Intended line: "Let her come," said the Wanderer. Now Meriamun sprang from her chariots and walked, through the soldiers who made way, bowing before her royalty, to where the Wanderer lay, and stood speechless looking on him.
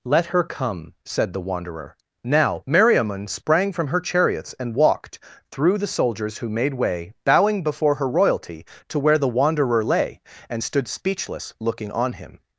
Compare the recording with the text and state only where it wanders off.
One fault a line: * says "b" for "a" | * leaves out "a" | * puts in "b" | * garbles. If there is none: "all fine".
all fine